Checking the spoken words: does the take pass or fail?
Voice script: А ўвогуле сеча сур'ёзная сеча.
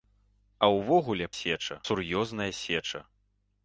pass